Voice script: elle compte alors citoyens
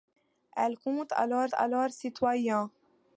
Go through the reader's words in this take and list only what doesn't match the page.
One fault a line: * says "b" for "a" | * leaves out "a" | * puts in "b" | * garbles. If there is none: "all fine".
* puts in "alors"